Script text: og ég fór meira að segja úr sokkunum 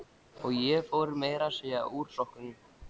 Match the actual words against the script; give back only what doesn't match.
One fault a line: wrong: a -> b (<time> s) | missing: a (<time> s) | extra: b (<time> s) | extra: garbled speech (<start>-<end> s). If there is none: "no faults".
no faults